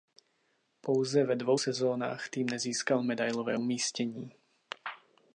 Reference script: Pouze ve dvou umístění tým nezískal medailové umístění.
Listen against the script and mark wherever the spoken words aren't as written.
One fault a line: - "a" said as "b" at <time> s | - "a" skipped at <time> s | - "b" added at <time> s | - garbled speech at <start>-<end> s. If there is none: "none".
- "umístění" said as "sezónách" at 1.5 s